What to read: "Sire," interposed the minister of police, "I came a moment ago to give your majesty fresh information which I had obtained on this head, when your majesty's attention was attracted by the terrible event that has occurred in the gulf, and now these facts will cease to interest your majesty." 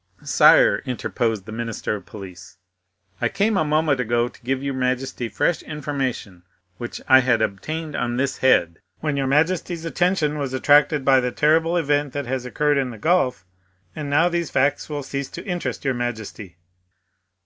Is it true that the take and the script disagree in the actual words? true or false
false